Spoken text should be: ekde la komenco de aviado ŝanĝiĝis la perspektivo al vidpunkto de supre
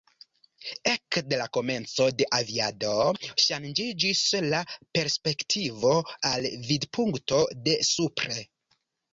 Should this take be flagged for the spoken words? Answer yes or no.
no